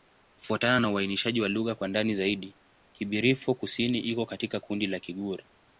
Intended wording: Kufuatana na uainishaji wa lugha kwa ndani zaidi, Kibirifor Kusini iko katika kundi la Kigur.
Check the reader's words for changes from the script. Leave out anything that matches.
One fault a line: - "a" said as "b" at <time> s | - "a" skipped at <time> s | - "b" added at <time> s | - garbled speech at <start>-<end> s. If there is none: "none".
none